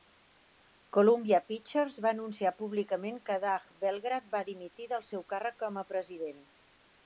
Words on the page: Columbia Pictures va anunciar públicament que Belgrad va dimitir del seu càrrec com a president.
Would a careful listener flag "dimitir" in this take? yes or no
no